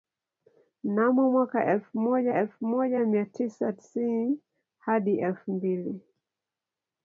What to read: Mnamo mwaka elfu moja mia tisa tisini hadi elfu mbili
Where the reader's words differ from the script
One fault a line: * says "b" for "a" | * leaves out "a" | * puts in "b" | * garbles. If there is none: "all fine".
* puts in "elfu moja"